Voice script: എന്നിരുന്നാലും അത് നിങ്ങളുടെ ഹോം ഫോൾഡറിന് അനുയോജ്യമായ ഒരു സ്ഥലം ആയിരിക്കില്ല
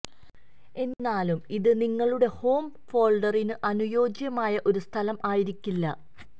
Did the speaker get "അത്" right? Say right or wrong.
wrong